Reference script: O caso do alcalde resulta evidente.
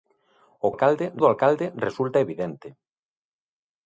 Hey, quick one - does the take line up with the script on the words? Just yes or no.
no